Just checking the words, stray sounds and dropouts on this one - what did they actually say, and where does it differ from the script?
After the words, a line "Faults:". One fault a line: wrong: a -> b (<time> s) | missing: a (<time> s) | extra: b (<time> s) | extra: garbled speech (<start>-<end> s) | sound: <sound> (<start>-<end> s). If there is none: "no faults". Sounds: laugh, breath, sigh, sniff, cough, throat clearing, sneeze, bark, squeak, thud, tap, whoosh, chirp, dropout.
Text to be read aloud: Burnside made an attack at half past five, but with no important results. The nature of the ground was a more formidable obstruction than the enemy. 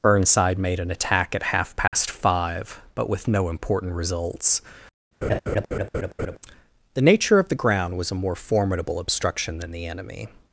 Burnside made an attack at half past five, but with no important results. The nature of the ground was a more formidable obstruction than the enemy.
Faults:
sound: dropout (1.9-1.9 s)
sound: laugh (5.2-6.4 s)